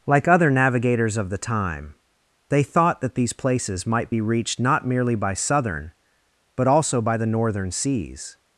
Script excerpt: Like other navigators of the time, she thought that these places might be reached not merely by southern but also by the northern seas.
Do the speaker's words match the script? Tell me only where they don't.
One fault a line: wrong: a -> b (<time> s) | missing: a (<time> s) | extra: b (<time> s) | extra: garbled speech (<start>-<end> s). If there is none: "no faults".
wrong: she -> they (2.5 s)